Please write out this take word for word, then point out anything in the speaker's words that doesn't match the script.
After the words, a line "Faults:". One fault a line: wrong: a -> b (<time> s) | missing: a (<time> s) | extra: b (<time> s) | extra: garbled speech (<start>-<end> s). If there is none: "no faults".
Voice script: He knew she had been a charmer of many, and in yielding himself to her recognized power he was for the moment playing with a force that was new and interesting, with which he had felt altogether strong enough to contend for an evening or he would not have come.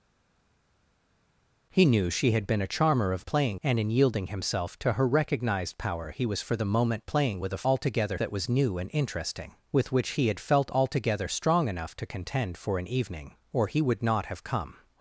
He knew she had been a charmer of playing, and in yielding himself to her recognized power he was for the moment playing with a altogether that was new and interesting, with which he had felt altogether strong enough to contend for an evening or he would not have come.
Faults:
wrong: many -> playing (3.2 s)
wrong: force -> altogether (7.6 s)